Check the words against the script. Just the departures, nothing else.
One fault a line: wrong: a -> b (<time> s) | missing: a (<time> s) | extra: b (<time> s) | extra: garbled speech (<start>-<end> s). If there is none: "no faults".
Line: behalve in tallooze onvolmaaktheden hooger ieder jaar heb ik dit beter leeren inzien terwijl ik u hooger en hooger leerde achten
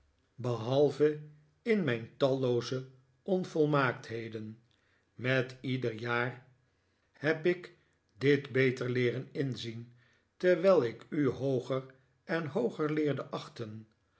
extra: mijn (1.8 s)
wrong: hooger -> met (5.1 s)